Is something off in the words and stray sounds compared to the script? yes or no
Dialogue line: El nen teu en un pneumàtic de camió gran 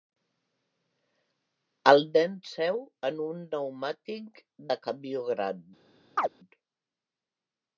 yes